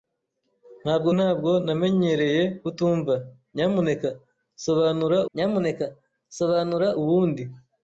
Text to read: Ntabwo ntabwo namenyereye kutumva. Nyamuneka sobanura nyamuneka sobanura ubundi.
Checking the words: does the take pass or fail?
pass